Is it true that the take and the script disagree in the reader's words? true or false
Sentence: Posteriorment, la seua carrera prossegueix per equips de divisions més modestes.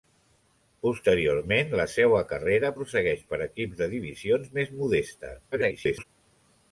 true